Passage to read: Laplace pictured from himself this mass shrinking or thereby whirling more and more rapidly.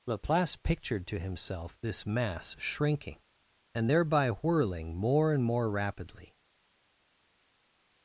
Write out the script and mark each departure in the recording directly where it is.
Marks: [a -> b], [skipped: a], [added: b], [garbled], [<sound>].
Laplace pictured [from -> to] himself this mass shrinking [or -> and] thereby whirling more and more rapidly.